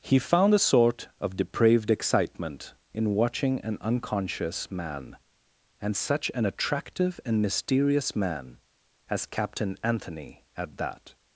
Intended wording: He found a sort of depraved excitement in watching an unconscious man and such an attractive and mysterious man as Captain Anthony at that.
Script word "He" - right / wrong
right